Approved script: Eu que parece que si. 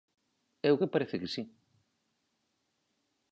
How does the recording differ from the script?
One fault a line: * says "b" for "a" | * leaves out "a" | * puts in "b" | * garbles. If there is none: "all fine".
all fine